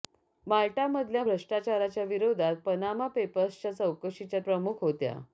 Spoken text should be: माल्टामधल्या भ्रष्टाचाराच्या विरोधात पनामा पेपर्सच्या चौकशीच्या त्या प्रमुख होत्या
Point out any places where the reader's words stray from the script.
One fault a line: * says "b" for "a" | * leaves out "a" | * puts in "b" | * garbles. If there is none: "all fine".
* leaves out "त्या"